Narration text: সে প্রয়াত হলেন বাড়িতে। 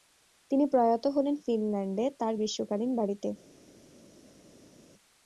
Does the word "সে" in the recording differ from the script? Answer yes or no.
yes